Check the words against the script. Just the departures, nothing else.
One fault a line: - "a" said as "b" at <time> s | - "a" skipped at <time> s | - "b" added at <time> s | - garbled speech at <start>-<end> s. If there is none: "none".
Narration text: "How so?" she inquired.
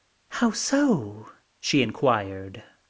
none